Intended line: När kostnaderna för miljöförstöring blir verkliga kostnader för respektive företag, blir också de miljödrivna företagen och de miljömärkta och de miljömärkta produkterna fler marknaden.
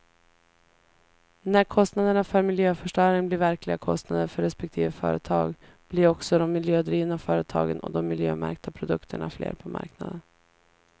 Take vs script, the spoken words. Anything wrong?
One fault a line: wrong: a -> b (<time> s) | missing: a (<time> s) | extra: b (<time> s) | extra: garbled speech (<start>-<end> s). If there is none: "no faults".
missing: och de miljömärkta (8.7 s)
extra: på (9.5 s)